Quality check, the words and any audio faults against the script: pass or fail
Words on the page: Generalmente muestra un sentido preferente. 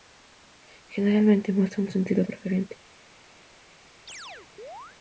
fail